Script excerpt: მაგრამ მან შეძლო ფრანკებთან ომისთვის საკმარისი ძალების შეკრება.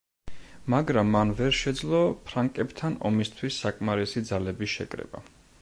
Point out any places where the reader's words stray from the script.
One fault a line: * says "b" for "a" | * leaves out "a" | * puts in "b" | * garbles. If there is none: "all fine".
* puts in "ვერ"